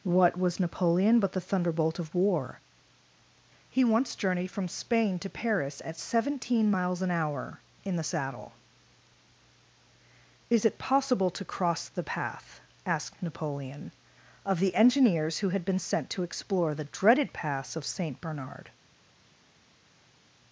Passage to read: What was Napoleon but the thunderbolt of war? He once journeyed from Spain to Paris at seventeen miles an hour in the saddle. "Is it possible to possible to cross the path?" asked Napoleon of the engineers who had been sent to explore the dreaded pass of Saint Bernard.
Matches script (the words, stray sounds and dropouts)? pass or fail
fail